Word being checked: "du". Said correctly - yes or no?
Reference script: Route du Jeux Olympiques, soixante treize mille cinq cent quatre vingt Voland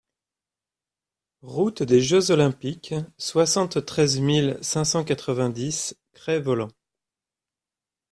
no